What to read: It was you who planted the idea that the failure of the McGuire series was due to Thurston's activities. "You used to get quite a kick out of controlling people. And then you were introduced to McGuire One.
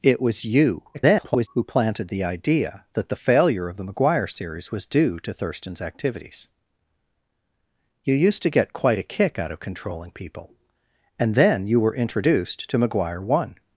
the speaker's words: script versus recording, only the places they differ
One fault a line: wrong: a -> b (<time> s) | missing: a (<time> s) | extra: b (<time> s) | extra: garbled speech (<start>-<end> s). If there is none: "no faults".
extra: garbled speech (0.9-1.5 s)